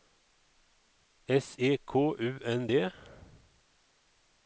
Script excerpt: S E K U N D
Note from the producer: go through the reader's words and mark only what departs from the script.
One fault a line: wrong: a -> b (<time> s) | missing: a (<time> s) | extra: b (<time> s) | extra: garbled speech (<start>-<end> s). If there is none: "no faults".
no faults